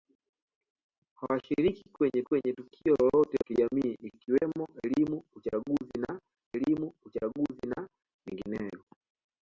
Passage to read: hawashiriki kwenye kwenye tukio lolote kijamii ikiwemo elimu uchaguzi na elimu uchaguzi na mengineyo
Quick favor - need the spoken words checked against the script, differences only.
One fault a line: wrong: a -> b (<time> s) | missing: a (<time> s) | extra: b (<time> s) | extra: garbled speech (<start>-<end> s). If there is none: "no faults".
no faults